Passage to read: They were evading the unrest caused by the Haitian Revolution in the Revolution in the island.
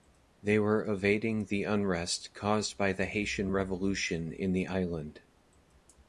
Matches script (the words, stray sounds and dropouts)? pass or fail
fail